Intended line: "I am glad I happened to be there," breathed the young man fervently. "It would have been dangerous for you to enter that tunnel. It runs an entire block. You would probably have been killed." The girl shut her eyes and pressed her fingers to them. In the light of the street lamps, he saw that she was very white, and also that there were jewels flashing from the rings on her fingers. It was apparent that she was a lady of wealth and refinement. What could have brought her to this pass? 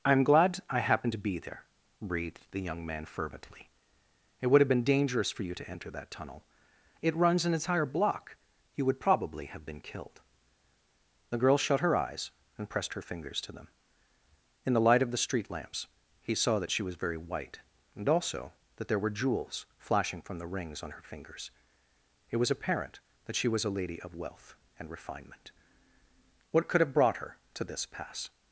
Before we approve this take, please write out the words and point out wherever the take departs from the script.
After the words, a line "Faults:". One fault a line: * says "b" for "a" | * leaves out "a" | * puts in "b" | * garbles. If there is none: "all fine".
"I am glad I happened to be there," breathed the young man fervently. "It would have been dangerous for you to enter that tunnel. It runs an entire block. You would probably have been killed." The girl shut her eyes and pressed her fingers to them. In the light of the street lamps, he saw that she was very white, and also that there were jewels flashing from the rings on her fingers. It was apparent that she was a lady of wealth and refinement. What could have brought her to this pass?
Faults:
all fine